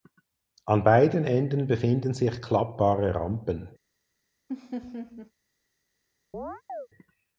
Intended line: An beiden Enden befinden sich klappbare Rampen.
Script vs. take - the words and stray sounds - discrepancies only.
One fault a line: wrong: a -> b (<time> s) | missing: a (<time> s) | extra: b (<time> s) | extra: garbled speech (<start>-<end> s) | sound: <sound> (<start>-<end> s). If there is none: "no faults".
sound: laugh (4.5-5.3 s)
sound: chirp (6.3-6.9 s)